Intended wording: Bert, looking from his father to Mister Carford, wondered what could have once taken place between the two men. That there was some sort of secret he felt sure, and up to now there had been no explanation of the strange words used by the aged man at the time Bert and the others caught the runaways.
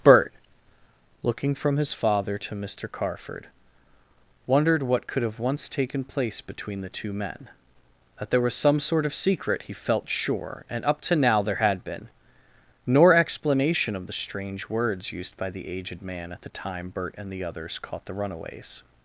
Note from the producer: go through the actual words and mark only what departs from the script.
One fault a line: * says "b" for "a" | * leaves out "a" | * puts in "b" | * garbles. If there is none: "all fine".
* says "nor" for "no"